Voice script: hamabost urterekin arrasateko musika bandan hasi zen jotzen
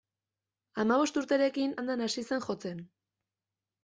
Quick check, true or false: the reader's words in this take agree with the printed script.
false